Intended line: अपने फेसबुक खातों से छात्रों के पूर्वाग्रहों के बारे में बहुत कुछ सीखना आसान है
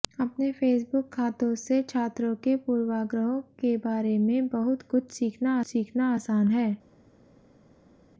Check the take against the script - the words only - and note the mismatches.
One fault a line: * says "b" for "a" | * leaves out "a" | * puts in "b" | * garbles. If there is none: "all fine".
* puts in "सीखना"